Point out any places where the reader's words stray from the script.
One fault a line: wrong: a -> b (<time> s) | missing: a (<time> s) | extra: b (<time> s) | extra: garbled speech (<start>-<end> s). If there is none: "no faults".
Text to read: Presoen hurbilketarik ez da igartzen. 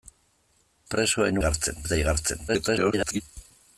wrong: hurbilketarik -> igartzen (1.4 s)
extra: garbled speech (2.5-3.2 s)